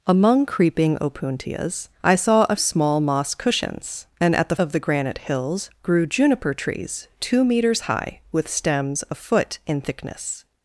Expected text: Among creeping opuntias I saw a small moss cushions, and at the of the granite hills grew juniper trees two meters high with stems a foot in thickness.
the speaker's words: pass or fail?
pass